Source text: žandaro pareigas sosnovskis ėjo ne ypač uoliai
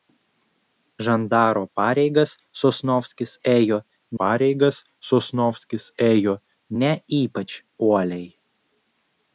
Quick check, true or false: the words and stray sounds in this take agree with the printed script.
false